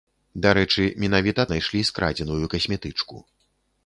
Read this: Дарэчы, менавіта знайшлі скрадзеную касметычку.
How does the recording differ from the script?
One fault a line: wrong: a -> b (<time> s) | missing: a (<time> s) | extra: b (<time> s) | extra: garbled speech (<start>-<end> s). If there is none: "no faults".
no faults